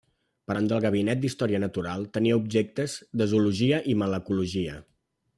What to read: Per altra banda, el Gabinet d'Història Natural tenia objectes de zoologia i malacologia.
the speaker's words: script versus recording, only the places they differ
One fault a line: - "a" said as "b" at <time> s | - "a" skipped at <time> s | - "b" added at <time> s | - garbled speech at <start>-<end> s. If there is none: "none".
- "altra" skipped at 0.6 s